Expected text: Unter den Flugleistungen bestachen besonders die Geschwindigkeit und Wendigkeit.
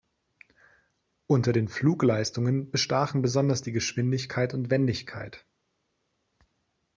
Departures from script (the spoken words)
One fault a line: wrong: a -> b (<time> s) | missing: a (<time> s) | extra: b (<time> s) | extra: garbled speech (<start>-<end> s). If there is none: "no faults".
no faults